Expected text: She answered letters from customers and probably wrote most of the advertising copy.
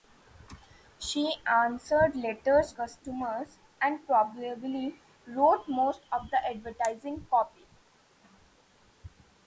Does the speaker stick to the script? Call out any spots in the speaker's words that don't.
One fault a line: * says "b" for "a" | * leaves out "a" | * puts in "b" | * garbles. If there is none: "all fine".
* leaves out "from"